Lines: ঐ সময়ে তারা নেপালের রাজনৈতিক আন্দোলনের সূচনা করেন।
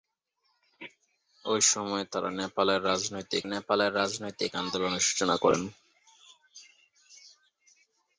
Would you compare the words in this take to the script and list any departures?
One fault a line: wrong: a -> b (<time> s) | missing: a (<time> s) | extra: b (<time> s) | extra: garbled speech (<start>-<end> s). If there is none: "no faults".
extra: নেপালের রাজনৈতিক (3.4 s)